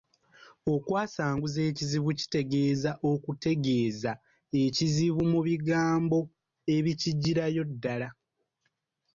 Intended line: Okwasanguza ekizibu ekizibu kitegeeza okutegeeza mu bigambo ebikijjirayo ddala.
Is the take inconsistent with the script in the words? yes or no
yes